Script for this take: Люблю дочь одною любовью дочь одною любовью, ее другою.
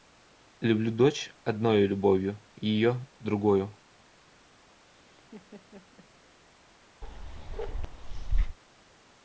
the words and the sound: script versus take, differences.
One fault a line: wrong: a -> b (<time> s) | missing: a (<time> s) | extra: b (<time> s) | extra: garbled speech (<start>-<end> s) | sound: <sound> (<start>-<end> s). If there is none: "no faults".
missing: дочь одною любовью (2.4 s)
sound: laugh (4.8-6.1 s)
sound: bark (7.0-8.6 s)